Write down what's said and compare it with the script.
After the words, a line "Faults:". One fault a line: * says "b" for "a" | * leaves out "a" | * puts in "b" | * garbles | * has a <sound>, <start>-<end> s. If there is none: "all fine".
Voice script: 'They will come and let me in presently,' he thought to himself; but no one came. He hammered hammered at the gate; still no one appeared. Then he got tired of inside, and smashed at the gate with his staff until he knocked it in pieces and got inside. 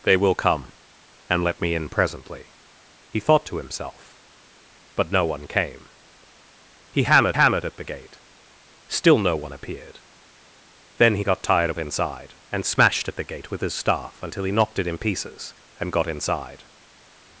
'They will come and let me in presently,' he thought to himself; but no one came. He hammered hammered at the gate; still no one appeared. Then he got tired of inside, and smashed at the gate with his staff until he knocked it in pieces and got inside.
Faults:
all fine